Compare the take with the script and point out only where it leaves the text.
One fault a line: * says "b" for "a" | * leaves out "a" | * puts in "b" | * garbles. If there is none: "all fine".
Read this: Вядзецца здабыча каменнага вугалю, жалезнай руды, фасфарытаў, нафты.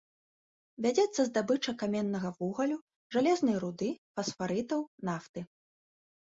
all fine